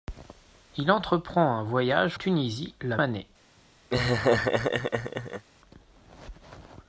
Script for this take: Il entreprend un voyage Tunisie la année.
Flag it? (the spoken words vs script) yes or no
no